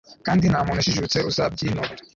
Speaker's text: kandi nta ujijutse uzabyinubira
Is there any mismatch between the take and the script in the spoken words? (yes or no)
yes